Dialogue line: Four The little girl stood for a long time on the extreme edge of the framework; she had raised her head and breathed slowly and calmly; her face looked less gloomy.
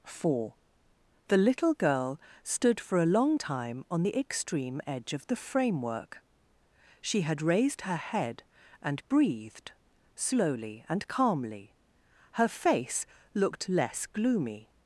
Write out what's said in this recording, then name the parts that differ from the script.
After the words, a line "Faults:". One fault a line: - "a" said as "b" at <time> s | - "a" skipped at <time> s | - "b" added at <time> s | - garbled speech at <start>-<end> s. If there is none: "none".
Four The little girl stood for a long time on the extreme edge of the framework; she had raised her head and breathed slowly and calmly; her face looked less gloomy.
Faults:
none